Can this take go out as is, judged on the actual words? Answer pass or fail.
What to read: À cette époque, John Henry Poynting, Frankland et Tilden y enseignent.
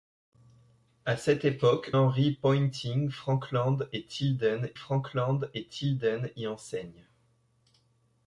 fail